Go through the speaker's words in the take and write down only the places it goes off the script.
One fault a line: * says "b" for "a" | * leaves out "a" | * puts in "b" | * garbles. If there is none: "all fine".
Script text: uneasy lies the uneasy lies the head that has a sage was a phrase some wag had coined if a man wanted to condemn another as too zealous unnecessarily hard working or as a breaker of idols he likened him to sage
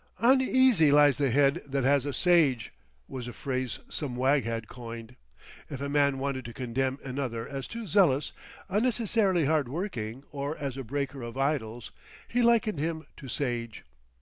* leaves out "uneasy lies the"